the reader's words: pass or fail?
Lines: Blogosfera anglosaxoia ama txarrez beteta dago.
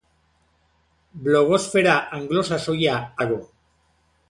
fail